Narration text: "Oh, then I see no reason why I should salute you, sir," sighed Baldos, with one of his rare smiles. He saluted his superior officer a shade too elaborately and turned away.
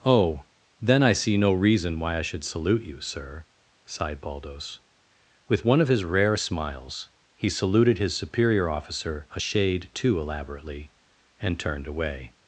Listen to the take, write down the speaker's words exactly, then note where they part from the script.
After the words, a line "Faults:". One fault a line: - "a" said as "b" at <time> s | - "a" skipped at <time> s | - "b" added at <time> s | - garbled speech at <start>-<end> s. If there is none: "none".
"Oh, then I see no reason why I should salute you, sir," sighed Baldos, with one of his rare smiles. He saluted his superior officer a shade too elaborately and turned away.
Faults:
none